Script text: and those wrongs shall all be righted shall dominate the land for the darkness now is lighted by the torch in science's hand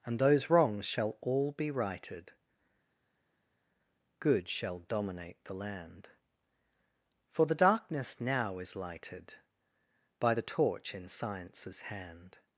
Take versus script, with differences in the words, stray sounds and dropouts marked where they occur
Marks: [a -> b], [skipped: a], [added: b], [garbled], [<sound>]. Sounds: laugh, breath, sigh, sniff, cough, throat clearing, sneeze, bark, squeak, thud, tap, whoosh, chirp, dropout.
and those wrongs shall all be righted [added: good] shall dominate the land for the darkness now is lighted by the torch in science's hand